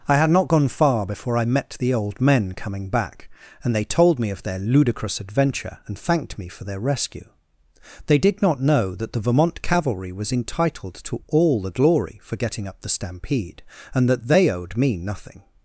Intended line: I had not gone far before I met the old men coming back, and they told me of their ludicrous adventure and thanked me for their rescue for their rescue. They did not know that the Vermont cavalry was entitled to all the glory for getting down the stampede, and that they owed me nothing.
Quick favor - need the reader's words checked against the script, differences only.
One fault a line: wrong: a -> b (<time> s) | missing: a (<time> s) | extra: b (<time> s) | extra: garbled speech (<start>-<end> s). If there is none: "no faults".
missing: for their rescue (7.3 s)
wrong: down -> up (12.7 s)